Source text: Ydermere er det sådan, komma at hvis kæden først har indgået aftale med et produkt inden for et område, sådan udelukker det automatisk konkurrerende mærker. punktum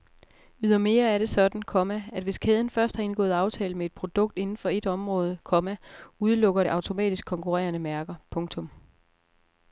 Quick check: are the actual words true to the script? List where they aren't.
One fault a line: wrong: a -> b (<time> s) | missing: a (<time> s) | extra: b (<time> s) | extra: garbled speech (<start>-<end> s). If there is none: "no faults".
wrong: sådan -> komma (5.4 s)